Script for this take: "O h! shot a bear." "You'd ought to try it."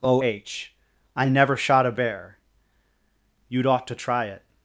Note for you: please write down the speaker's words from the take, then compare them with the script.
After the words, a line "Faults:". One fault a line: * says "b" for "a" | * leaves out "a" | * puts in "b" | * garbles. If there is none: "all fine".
"O h! I never shot a bear." "You'd ought to try it."
Faults:
* puts in "I never"